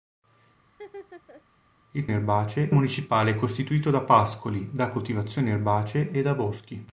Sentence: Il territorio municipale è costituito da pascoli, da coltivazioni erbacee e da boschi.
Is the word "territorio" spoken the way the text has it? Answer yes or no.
no